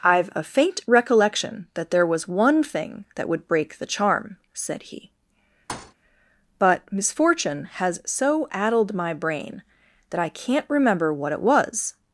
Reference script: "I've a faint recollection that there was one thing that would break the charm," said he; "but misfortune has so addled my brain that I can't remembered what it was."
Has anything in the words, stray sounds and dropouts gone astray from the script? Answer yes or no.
yes